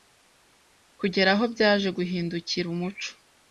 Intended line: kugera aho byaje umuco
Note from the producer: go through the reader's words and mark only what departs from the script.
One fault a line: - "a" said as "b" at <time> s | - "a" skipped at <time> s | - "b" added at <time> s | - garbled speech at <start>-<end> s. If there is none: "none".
- "guhindukira" added at 2.0 s